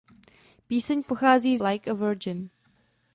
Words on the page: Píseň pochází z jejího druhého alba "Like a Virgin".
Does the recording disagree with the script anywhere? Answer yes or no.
yes